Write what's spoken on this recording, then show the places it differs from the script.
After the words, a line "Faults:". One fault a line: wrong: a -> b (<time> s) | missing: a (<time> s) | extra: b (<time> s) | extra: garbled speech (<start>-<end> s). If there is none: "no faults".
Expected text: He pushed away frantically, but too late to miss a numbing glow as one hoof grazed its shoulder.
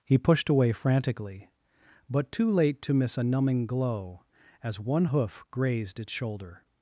He pushed away frantically, but too late to miss a numbing glow as one hoof grazed its shoulder.
Faults:
no faults